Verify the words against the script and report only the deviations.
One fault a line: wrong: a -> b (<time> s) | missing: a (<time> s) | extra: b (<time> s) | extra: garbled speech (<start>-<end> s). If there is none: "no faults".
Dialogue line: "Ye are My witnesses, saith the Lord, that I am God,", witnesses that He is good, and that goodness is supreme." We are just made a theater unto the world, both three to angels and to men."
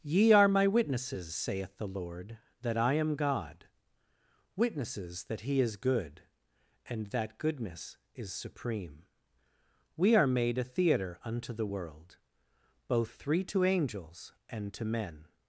missing: just (10.3 s)